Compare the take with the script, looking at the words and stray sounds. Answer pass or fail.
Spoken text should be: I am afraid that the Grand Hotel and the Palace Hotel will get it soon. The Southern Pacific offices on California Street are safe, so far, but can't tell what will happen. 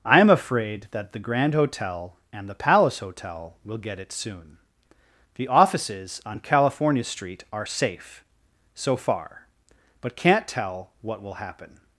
fail